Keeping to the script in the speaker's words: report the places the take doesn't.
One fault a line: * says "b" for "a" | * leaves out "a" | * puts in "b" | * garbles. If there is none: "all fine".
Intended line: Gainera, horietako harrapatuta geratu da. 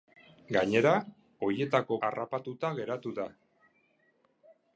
all fine